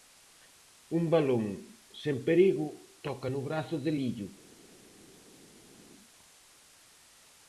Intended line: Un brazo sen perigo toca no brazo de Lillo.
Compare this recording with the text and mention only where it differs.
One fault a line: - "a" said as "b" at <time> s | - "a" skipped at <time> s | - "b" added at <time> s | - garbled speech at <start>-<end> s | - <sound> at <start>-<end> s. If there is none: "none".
- "brazo" said as "balón" at 1.1 s